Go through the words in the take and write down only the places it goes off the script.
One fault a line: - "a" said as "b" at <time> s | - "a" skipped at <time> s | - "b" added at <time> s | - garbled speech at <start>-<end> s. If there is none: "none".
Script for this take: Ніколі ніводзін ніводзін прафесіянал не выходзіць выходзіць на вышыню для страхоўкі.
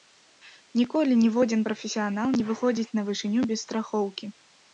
- "ніводзін" skipped at 1.6 s
- "выходзіць" skipped at 2.9 s
- "для" said as "без" at 3.5 s